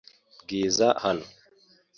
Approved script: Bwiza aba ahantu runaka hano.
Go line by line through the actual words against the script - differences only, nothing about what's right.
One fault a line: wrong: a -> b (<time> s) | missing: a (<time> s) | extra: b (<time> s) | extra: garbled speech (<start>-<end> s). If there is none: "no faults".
missing: aba ahantu runaka (0.9 s)